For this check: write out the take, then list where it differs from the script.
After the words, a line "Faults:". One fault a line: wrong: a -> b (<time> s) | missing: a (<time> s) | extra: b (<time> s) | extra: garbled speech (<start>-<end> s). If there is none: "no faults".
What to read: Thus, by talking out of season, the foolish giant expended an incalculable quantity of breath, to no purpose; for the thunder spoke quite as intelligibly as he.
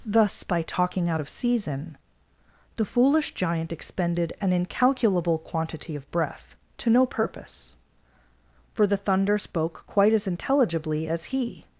Thus, by talking out of season, the foolish giant expended an incalculable quantity of breath, to no purpose; for the thunder spoke quite as intelligibly as he.
Faults:
no faults